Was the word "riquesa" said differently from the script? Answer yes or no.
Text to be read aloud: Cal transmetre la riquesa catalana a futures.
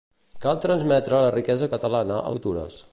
no